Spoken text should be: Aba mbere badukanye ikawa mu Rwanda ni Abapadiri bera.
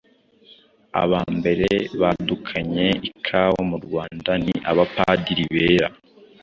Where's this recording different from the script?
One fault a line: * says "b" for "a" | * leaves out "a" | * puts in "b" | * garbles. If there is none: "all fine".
all fine